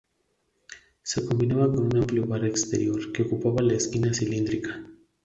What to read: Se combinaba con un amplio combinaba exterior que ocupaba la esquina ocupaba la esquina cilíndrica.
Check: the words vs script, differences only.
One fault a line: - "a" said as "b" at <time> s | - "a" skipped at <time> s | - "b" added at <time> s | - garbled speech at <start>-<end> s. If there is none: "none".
- "combinaba" said as "bar" at 2.2 s
- "ocupaba la esquina" skipped at 4.1 s